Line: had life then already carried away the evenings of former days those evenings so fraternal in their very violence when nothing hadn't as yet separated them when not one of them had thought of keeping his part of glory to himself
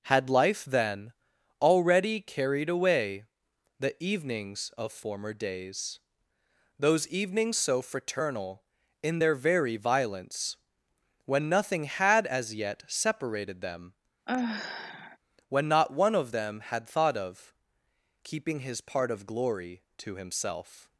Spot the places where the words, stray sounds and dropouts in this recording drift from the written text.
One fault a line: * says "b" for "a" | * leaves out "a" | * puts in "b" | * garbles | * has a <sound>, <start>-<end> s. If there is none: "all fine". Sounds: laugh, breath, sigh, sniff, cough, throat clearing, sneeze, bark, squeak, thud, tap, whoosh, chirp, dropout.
* says "had" for "hadn't"
* has a sigh, 14.3-15.2 s